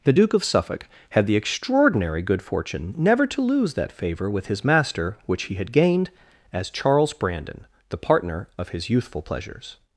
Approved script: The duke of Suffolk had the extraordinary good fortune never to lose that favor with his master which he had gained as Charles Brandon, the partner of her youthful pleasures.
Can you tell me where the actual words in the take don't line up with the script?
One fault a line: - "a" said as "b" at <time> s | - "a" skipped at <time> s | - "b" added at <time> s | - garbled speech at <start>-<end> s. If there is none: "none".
- "her" said as "his" at 8.7 s